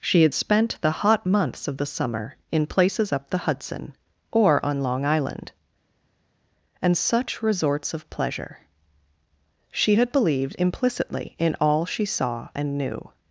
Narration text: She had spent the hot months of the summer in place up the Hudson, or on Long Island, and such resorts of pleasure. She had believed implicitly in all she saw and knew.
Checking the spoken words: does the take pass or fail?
fail